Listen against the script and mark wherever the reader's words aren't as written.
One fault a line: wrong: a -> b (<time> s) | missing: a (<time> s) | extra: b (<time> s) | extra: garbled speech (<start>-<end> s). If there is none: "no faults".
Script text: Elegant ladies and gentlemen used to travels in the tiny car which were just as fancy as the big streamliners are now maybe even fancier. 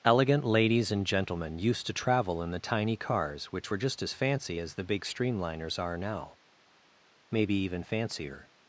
wrong: travels -> travel (1.9 s)
wrong: car -> cars (3.0 s)